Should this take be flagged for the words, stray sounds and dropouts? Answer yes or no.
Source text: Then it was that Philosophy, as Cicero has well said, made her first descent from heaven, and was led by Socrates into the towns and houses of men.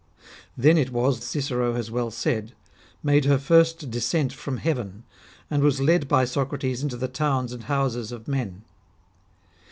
yes